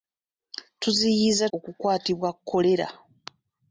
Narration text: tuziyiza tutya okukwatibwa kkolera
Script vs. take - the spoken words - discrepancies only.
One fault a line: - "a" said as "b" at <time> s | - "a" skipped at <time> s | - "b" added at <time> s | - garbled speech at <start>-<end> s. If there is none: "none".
- "tutya" skipped at 1.4 s